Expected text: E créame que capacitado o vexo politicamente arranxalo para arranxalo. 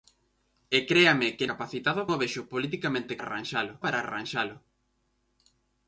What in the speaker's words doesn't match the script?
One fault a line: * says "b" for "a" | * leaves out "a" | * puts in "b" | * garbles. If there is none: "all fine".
all fine